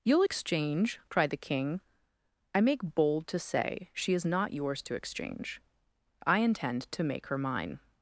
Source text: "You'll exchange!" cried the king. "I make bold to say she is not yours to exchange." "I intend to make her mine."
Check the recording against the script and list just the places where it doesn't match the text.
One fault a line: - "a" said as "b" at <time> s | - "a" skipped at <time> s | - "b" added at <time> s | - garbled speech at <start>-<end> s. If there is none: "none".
none